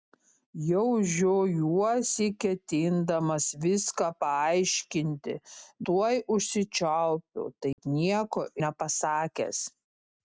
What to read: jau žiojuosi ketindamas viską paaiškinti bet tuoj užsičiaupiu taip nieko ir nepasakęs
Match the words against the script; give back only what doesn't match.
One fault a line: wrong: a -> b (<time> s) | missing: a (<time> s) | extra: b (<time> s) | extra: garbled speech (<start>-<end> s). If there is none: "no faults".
missing: bet (5.3 s)
missing: ir (8.5 s)